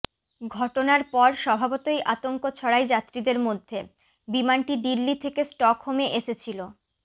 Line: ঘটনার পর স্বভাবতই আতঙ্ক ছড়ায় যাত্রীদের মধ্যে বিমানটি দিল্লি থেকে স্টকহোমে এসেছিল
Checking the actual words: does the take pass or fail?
pass